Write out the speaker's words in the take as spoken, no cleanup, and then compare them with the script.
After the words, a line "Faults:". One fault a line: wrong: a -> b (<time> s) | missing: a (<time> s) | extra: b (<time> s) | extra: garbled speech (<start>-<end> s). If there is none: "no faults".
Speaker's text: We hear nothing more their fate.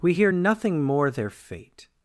We hear nothing more their fate.
Faults:
no faults